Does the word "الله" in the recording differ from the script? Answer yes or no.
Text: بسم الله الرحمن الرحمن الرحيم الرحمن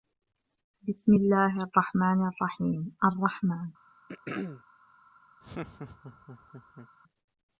no